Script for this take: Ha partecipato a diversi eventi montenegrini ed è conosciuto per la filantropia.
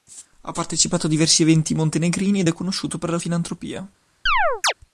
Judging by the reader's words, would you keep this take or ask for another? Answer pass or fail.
pass